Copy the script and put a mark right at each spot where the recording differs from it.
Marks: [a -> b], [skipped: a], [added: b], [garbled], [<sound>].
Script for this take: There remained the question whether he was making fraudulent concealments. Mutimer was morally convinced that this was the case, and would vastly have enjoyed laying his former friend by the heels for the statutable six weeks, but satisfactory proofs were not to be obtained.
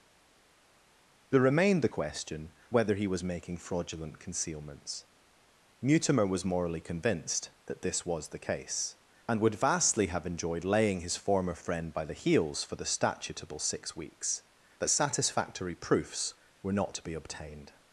There remained the question whether he was making fraudulent concealments. Mutimer was morally convinced that this was the case, and would vastly have enjoyed laying his former friend by the heels for the statutable six weeks, but satisfactory proofs were not to be obtained.